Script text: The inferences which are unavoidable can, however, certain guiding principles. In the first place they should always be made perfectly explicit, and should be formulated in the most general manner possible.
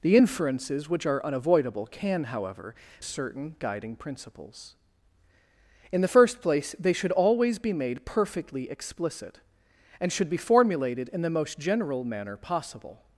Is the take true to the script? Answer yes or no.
yes